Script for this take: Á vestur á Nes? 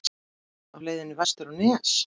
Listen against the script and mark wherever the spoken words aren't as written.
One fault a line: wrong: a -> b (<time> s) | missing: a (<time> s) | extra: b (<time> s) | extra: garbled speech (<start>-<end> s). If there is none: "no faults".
extra: leiðinni (0.8 s)